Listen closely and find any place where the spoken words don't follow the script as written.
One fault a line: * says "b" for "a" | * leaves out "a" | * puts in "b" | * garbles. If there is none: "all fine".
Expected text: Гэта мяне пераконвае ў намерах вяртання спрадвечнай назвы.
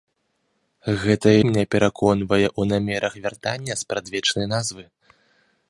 all fine